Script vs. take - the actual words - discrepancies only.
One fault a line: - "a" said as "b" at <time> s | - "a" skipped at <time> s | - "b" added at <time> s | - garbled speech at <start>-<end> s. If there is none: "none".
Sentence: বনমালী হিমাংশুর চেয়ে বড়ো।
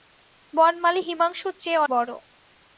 none